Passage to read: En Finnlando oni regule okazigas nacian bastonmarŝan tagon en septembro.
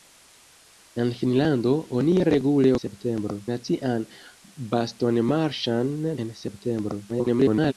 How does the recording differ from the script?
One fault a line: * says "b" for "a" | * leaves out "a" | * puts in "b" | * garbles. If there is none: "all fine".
* says "septembro" for "okazigas"
* leaves out "tagon"
* garbles